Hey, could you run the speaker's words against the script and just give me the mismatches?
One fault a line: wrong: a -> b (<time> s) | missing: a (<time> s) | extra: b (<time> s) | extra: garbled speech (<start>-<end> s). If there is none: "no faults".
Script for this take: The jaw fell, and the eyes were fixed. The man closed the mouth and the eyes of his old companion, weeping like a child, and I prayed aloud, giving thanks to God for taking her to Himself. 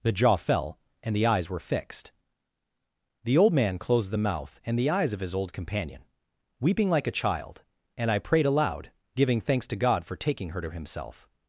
extra: old (3.4 s)